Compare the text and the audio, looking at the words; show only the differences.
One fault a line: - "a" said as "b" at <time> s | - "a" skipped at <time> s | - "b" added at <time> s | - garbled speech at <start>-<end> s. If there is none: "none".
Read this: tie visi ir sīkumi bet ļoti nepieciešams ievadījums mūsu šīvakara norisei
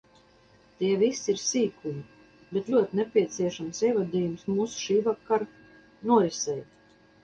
none